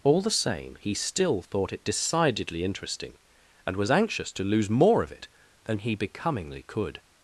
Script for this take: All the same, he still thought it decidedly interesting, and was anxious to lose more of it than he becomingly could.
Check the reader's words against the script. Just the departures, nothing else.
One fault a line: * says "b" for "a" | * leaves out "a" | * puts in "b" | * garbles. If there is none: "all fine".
all fine